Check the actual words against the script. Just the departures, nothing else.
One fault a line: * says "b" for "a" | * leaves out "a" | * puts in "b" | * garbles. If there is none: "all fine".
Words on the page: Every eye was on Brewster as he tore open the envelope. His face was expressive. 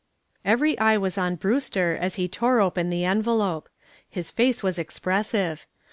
all fine